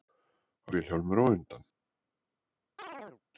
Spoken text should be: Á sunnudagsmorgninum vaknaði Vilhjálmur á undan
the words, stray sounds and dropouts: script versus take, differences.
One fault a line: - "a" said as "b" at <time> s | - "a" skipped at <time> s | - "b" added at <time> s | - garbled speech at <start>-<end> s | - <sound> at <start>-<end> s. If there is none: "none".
- "sunnudagsmorgninum vaknaði" skipped at 0.7 s
- chirp at 2.8-3.2 s